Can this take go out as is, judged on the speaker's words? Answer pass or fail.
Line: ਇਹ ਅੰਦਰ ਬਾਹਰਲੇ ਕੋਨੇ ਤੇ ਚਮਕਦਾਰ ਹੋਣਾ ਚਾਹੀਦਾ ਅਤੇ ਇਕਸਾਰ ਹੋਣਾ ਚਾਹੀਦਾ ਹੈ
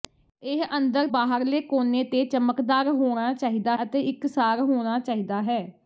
pass